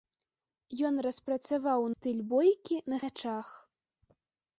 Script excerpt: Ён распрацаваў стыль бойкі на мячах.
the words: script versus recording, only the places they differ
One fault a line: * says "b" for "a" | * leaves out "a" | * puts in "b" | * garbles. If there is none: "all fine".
all fine